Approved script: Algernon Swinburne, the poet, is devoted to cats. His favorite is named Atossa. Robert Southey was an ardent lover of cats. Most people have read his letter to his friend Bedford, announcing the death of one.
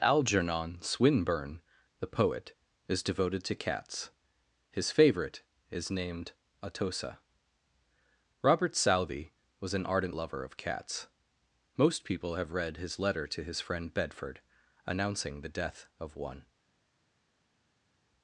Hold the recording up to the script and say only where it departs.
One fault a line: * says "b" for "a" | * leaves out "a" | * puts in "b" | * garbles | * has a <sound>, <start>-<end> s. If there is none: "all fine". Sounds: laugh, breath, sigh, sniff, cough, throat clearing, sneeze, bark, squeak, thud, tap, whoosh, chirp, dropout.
all fine